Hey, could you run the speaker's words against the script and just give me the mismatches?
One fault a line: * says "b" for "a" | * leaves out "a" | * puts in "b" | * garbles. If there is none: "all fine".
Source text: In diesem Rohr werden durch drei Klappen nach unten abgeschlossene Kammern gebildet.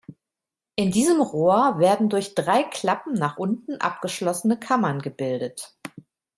all fine